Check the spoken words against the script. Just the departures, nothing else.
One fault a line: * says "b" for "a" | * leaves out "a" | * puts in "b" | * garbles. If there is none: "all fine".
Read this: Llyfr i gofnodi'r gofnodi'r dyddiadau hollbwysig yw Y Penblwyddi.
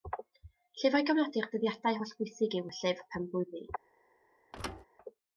* leaves out "gofnodi'r"
* puts in "Llyfr"